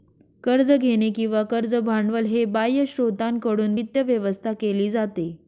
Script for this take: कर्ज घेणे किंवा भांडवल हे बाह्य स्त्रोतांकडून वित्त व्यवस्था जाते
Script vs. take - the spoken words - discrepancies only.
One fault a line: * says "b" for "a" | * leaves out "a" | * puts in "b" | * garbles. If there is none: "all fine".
* puts in "कर्ज"
* puts in "केली"